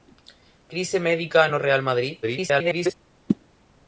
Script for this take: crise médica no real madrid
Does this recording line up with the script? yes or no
no